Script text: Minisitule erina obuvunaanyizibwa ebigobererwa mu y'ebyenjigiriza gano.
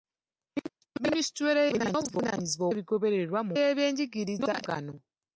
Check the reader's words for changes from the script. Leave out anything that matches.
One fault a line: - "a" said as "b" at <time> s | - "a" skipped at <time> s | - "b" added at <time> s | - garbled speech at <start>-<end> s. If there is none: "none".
none